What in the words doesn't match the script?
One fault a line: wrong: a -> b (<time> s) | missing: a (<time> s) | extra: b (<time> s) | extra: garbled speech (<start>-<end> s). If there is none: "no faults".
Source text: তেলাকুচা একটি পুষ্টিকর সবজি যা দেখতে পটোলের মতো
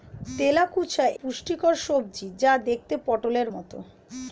missing: একটি (1.1 s)